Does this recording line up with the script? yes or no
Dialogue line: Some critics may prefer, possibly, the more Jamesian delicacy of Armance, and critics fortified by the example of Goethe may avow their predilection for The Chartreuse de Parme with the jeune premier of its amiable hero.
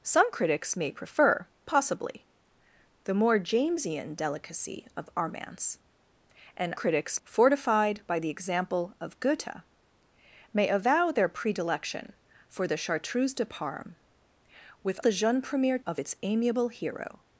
yes